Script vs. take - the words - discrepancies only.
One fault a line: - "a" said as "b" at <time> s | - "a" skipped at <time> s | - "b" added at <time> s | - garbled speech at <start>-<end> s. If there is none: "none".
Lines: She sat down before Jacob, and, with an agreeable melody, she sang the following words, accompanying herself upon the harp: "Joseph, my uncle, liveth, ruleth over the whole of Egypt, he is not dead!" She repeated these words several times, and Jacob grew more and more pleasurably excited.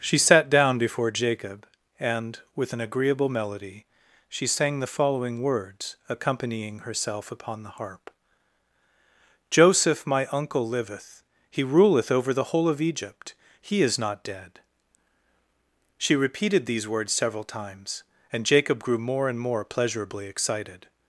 - "he" added at 11.5 s